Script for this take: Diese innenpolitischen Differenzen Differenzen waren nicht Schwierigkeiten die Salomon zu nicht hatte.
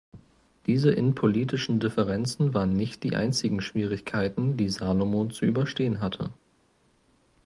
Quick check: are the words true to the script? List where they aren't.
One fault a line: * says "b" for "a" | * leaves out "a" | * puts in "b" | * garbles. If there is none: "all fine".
* leaves out "Differenzen"
* puts in "die einzigen"
* says "überstehen" for "nicht"